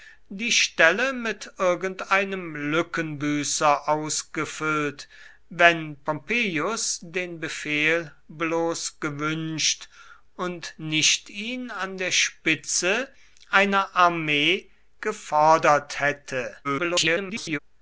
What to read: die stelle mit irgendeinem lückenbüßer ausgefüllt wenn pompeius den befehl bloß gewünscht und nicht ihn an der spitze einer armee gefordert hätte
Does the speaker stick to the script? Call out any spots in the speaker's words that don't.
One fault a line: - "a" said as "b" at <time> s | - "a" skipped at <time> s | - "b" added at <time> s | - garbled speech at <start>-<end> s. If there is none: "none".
- garbled speech at 16.6-17.6 s